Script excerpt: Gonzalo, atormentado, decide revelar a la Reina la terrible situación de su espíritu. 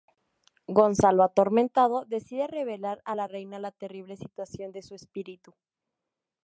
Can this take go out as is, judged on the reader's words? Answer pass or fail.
pass